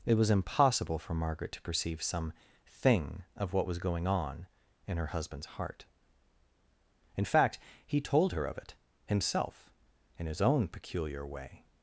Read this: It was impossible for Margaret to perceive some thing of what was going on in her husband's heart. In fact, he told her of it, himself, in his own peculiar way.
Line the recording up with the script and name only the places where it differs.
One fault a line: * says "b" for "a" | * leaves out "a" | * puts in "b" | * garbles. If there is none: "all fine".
all fine